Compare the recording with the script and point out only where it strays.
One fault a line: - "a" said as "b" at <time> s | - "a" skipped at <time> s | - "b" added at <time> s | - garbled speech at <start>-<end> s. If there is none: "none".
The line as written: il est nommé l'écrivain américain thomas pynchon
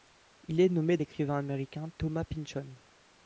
none